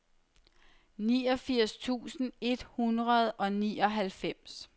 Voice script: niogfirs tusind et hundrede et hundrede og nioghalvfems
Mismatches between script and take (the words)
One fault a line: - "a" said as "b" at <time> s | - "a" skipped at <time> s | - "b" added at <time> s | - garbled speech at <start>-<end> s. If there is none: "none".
- "et hundrede" skipped at 3.3 s